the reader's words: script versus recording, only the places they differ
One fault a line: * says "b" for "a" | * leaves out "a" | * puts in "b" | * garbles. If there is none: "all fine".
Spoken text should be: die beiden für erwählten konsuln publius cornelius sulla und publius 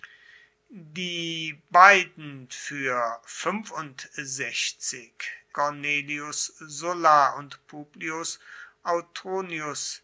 * leaves out "erwählten konsuln publius"